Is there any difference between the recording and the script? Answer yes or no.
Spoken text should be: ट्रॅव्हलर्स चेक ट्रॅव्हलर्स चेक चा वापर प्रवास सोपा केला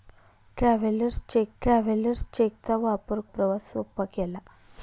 no